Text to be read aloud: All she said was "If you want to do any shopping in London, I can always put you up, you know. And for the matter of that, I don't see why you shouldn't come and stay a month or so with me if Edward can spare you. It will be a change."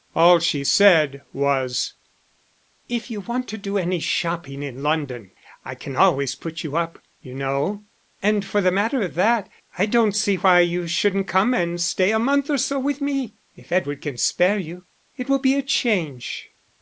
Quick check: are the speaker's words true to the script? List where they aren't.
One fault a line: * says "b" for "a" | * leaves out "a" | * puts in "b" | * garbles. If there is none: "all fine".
all fine